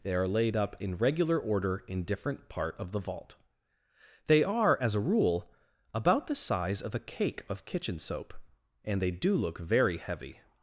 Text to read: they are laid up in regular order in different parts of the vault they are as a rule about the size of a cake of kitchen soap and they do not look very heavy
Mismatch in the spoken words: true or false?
true